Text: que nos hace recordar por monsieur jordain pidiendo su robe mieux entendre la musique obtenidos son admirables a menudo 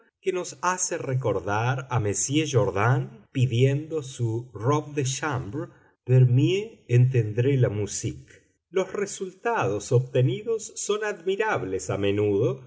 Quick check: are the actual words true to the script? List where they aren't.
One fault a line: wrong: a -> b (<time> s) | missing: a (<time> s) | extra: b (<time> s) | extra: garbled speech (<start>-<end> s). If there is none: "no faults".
wrong: por -> a (1.9 s)
extra: de chambre pour (4.9 s)
extra: los resultados (8.7 s)